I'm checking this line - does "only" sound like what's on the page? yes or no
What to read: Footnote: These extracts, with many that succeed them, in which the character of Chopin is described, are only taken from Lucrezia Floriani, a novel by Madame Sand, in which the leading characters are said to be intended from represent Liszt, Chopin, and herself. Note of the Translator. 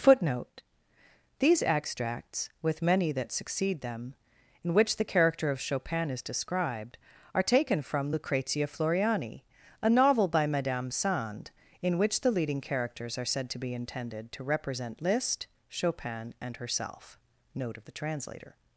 no